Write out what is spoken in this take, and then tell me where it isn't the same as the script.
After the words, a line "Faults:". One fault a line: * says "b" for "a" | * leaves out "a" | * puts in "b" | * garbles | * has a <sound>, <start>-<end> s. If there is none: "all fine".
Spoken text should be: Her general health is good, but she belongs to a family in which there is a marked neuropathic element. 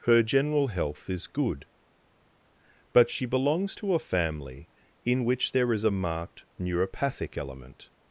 Her general health is good, but she belongs to a family in which there is a marked neuropathic element.
Faults:
all fine